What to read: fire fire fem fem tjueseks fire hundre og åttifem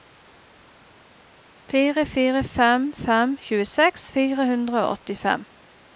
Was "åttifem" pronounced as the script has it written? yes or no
yes